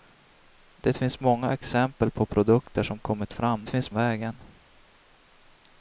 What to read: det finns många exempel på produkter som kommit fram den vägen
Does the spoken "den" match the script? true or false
false